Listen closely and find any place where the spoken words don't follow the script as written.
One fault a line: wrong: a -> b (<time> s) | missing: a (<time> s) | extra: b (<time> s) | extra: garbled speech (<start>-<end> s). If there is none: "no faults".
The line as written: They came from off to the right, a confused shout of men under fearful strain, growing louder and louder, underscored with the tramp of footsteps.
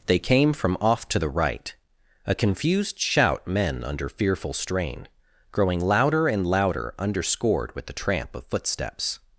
missing: of (3.5 s)